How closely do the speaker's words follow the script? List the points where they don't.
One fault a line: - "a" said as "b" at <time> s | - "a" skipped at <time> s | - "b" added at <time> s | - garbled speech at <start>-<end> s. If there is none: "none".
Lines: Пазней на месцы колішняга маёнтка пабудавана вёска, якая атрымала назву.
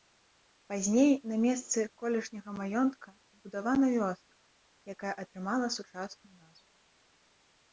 - "сучасную" added at 5.8 s